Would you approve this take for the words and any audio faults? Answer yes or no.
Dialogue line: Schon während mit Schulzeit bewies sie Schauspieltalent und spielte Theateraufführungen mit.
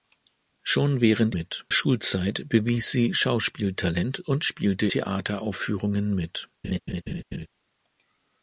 no